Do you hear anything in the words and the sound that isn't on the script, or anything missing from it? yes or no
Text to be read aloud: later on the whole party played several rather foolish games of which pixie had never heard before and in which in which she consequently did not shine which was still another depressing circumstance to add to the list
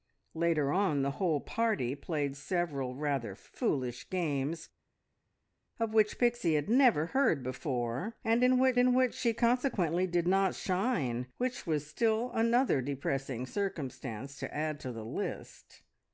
no